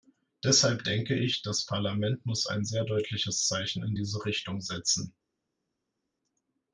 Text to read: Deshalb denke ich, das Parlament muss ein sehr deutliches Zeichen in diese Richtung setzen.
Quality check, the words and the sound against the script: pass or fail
pass